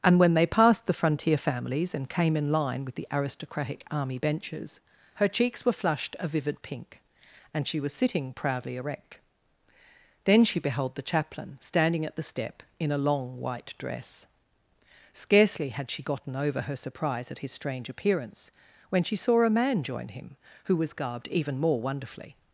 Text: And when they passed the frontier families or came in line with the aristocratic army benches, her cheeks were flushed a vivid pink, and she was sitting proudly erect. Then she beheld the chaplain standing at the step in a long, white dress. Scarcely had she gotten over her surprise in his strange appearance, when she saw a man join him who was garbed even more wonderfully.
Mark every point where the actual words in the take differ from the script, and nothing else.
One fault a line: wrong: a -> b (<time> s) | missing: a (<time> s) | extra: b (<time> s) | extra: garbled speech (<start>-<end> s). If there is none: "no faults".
wrong: or -> and (1.9 s)
wrong: in -> at (17.3 s)